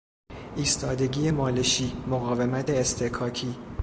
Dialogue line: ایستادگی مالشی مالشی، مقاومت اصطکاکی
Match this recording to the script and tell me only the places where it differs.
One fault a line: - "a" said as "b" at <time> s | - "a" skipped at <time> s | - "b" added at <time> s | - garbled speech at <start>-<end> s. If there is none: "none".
- "مالشی" skipped at 1.9 s